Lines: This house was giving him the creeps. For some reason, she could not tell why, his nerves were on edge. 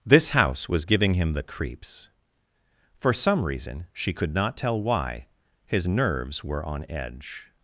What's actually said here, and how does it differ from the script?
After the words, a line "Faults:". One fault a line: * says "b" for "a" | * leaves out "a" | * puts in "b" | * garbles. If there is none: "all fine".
This house was giving him the creeps. For some reason, she could not tell why, his nerves were on edge.
Faults:
all fine